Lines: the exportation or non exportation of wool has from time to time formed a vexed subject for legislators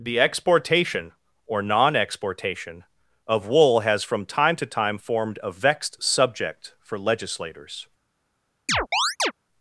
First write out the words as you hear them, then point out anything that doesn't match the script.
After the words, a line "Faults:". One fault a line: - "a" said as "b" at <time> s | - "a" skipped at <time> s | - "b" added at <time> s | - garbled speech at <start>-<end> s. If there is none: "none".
the exportation or non exportation of wool has from time to time formed a vexed subject for legislators
Faults:
none